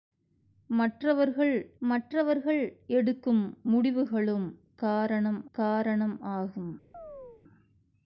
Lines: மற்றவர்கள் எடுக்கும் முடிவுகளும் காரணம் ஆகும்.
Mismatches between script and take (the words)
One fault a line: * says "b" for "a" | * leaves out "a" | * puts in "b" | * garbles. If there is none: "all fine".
* puts in "மற்றவர்கள்"
* puts in "காரணம்"